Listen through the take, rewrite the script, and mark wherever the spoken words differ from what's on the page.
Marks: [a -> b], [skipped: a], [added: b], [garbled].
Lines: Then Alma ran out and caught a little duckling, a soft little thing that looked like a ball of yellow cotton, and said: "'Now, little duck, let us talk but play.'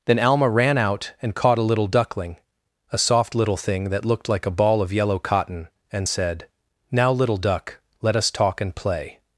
Then Alma ran out and caught a little duckling, a soft little thing that looked like a ball of yellow cotton, and said: "'Now, little duck, let us talk [but -> and] play.'